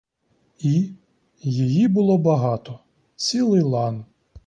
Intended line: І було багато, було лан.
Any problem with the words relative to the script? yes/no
yes